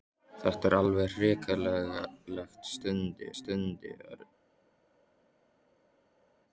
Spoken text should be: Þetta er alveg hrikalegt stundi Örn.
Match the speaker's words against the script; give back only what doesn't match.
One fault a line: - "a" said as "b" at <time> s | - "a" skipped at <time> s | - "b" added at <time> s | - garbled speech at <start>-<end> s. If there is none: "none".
- "stundi" added at 3.3 s